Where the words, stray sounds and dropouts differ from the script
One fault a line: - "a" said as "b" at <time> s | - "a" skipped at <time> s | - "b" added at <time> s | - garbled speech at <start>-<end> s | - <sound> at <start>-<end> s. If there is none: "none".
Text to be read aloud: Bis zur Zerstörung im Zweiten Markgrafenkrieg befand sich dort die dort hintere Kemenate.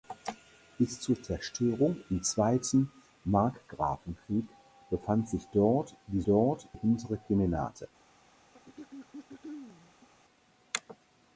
- throat clearing at 8.5-10.1 s